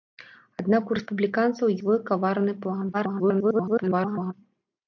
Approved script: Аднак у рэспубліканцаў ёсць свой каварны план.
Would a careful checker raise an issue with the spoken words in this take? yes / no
yes